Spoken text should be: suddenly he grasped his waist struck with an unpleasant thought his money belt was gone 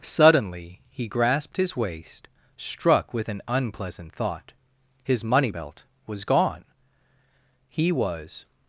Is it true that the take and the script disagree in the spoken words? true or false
true